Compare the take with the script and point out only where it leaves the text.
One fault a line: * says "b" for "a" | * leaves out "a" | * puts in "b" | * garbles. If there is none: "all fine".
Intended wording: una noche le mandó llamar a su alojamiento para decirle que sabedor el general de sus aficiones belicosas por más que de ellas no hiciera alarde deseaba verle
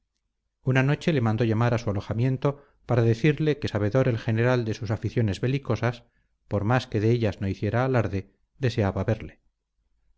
all fine